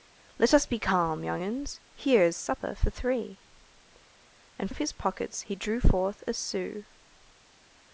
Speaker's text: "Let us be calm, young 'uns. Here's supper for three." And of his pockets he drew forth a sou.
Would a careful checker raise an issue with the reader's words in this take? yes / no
no